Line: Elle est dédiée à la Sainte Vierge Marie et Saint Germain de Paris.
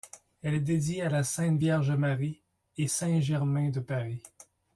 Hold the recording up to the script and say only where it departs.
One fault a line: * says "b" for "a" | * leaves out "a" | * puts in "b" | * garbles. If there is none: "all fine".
all fine